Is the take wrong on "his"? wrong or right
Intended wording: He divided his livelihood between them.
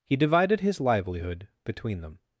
right